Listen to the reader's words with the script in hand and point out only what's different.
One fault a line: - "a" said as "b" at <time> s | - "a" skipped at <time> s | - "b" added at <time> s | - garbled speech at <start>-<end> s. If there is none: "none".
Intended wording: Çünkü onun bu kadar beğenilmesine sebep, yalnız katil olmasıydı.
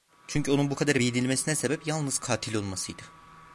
none